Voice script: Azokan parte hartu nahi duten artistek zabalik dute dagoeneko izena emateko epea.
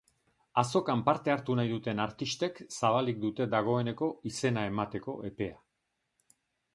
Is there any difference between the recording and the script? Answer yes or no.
no